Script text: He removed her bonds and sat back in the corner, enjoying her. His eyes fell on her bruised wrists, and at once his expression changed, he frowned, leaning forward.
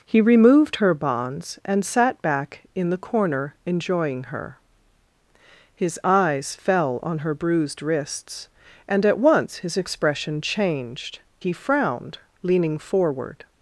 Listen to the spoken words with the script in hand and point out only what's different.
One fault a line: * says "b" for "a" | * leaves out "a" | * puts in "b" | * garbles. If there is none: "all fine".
all fine